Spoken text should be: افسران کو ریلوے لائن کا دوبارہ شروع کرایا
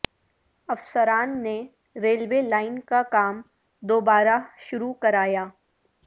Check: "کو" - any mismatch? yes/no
yes